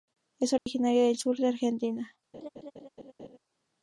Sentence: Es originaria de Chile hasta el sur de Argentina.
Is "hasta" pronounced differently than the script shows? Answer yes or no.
yes